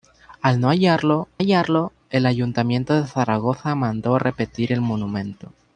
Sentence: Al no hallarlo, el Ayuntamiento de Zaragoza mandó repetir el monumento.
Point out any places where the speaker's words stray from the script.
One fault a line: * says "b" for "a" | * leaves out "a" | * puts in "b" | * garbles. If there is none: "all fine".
* puts in "hallarlo"